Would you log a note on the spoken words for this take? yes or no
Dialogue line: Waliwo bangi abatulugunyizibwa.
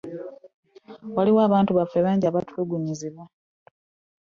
yes